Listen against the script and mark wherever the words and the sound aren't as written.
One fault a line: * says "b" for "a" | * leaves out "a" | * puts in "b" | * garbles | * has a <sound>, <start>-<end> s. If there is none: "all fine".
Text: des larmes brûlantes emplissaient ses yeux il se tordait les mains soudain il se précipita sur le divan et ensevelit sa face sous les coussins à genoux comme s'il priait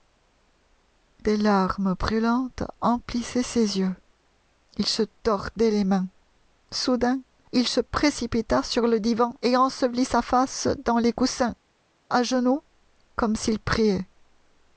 * says "dans" for "sous"